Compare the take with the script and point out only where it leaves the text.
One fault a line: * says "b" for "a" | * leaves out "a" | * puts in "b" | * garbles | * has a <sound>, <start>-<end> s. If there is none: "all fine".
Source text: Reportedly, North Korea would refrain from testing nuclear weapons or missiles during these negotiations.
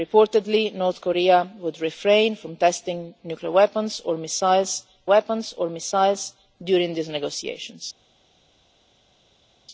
* puts in "weapons or missiles"